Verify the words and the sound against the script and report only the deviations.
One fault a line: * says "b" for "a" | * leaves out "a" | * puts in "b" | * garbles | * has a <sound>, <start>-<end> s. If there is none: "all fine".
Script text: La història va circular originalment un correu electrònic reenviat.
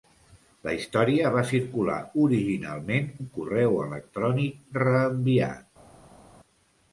all fine